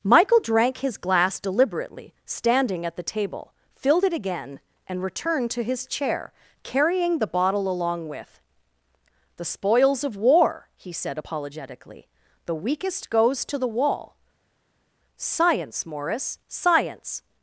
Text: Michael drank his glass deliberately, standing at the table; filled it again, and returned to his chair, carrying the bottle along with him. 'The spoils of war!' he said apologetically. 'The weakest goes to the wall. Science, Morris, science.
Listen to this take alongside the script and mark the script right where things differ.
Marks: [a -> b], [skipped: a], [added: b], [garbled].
Michael drank his glass deliberately, standing at the table; filled it again, and returned to his chair, carrying the bottle along with [skipped: him.] 'The spoils of war!' he said apologetically. 'The weakest goes to the wall. Science, Morris, science.